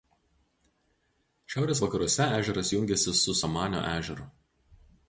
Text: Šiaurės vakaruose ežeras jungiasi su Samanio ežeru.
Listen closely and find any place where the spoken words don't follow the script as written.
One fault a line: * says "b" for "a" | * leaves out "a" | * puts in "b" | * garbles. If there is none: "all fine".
all fine